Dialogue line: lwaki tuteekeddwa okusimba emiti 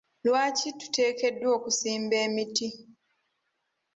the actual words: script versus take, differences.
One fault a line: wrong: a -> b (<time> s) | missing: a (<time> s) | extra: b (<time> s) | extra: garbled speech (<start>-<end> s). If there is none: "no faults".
no faults